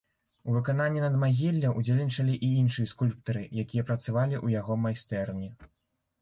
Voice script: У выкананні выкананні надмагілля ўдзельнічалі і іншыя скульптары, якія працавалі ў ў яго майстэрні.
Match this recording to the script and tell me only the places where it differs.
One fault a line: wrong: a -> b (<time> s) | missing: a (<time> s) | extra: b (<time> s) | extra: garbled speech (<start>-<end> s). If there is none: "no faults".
missing: выкананні (1.0 s)
missing: ў (4.6 s)